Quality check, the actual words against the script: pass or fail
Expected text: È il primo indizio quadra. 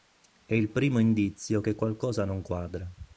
fail